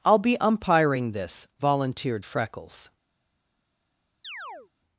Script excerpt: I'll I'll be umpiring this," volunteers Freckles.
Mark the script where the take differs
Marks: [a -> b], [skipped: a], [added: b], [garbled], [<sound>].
I'll [skipped: I'll] be umpiring this," [volunteers -> volunteered] Freckles. [chirp]